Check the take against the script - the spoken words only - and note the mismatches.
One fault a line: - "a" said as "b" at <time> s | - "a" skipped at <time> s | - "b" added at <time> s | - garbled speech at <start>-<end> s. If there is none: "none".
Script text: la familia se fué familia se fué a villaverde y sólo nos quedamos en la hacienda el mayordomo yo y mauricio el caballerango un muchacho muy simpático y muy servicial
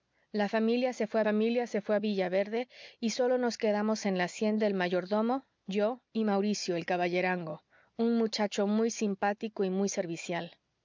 none